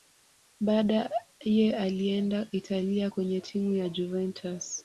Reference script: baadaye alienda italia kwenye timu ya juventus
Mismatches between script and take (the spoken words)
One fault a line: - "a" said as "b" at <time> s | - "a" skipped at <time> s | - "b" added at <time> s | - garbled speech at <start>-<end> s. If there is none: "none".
none